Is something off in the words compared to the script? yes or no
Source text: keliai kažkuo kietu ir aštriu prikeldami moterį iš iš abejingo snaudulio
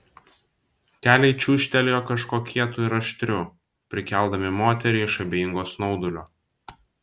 yes